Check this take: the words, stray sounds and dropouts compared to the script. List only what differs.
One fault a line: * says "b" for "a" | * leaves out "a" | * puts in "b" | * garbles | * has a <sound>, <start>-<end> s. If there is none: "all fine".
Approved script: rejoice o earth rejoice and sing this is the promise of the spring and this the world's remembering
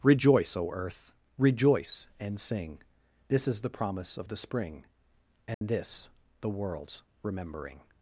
* has a dropout, 5.5-5.6 s